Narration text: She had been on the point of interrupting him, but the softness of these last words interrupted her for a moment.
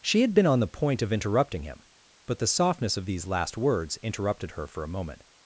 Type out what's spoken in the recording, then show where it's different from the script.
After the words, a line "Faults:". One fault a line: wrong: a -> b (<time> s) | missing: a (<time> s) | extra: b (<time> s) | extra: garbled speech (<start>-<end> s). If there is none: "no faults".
She had been on the point of interrupting him, but the softness of these last words interrupted her for a moment.
Faults:
no faults